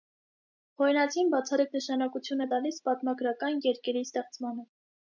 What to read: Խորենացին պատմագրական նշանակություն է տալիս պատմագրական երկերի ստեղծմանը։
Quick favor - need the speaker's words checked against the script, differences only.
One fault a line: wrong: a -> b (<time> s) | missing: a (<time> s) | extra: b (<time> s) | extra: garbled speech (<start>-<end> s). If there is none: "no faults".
wrong: պատմագրական -> բացառիկ (1.3 s)